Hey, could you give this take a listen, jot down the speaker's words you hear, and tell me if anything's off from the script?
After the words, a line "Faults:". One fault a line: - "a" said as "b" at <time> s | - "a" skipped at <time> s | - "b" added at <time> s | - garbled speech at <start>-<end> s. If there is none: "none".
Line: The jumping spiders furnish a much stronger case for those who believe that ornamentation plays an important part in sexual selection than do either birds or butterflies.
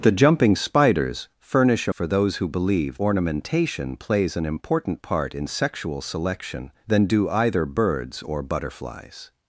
The jumping spiders furnish a for those who believe ornamentation plays an important part in sexual selection than do either birds or butterflies.
Faults:
- "much stronger case" skipped at 1.9 s
- "that" skipped at 3.0 s